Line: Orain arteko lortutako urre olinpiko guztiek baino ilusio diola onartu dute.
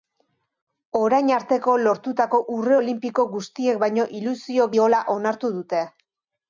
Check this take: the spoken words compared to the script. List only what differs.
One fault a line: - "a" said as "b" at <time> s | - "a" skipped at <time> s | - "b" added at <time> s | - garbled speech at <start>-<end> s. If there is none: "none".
none